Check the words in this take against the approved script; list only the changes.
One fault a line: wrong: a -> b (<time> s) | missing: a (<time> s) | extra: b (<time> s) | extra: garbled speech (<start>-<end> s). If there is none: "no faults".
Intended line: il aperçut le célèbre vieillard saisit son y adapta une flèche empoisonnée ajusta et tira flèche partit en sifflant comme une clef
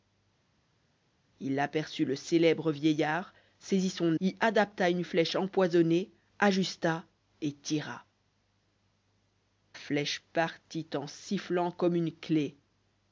no faults